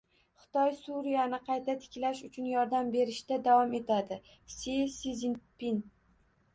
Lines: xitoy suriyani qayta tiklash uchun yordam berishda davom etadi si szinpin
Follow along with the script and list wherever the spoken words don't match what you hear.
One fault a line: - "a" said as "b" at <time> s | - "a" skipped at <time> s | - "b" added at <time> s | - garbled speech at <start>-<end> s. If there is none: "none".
none